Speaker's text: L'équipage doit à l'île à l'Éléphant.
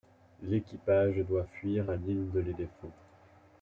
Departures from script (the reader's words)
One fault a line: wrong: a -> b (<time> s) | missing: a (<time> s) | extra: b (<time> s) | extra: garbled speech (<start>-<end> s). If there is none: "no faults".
extra: fuir (1.4 s)
wrong: à -> de (2.3 s)